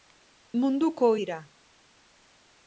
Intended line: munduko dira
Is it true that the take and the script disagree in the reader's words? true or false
false